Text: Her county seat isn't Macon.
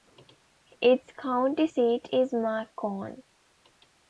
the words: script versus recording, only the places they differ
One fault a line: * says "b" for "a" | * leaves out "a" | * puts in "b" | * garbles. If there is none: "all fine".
* says "Its" for "Her"
* says "is" for "isn't"